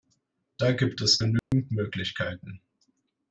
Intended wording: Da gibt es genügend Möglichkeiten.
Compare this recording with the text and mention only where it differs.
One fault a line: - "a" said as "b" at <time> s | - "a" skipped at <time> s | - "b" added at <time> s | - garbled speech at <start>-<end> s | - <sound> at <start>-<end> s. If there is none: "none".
- dropout at 1.4-1.5 s